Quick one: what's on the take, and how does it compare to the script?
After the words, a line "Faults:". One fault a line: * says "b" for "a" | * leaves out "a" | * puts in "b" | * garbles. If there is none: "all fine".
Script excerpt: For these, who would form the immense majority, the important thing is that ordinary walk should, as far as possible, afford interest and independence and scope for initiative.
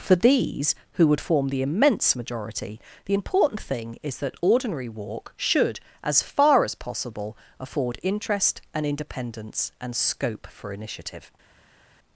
For these, who would form the immense majority, the important thing is that ordinary walk should, as far as possible, afford interest and independence and scope for initiative.
Faults:
all fine